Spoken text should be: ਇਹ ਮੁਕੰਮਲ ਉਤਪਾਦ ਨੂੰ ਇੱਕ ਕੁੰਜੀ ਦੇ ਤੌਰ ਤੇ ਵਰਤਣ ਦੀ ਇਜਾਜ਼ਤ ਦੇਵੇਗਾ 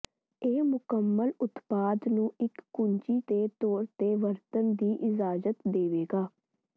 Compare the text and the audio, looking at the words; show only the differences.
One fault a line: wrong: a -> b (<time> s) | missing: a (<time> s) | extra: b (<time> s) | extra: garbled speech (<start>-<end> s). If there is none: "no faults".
no faults